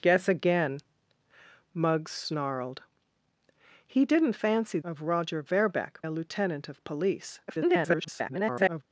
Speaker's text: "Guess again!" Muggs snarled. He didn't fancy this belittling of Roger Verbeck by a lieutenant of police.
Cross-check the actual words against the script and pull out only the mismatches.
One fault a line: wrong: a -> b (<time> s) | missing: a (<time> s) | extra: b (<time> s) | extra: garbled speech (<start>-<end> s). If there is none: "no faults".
missing: this belittling (4.8 s)
missing: by (6.0 s)
extra: garbled speech (7.5-8.8 s)